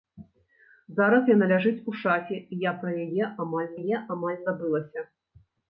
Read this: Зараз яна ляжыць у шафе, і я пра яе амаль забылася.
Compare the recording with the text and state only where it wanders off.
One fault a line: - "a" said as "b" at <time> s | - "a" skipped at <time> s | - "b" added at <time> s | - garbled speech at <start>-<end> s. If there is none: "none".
- "яе амаль" added at 3.8 s